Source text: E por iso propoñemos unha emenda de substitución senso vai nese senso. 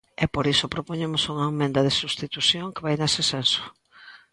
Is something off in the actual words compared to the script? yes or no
yes